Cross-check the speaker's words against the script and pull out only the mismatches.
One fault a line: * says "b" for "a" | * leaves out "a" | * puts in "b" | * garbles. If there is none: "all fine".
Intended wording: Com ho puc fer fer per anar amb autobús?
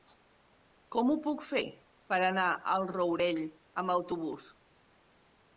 * leaves out "fer"
* puts in "al Rourell"